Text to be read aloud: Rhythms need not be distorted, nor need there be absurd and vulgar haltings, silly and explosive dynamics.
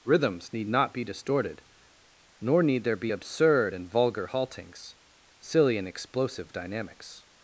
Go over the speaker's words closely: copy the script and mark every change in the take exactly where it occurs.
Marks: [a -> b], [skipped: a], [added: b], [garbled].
Rhythms need not be distorted, nor need there be absurd and vulgar haltings, silly and explosive dynamics.